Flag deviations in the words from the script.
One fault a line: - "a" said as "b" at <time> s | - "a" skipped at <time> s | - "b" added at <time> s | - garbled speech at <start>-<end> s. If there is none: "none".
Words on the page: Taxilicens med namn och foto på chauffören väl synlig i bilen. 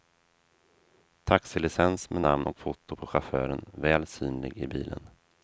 none